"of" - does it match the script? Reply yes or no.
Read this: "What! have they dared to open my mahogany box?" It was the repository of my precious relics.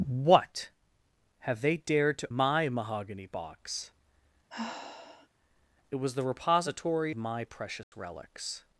no